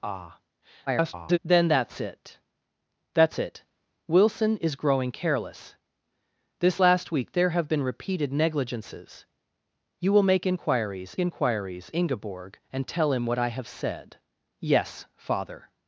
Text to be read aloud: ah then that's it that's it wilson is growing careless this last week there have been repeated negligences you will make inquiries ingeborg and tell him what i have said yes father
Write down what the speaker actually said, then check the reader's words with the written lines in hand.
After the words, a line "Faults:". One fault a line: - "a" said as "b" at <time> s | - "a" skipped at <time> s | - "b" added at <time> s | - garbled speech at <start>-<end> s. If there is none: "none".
ah [garbled] then that's it that's it wilson is growing careless this last week there have been repeated negligences you will make inquiries inquiries ingeborg and tell him what i have said yes father
Faults:
- garbled speech at 0.9-1.4 s
- "inquiries" added at 11.2 s